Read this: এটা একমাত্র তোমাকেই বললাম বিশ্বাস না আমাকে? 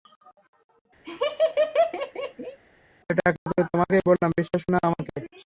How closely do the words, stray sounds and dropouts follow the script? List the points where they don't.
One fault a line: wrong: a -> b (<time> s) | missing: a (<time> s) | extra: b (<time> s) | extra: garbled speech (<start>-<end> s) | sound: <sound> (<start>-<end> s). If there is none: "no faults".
sound: laugh (1.0-2.6 s)
sound: dropout (3.4-3.5 s)